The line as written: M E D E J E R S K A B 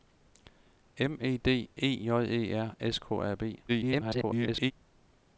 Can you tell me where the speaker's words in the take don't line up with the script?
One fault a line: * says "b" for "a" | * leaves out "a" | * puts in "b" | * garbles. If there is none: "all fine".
* garbles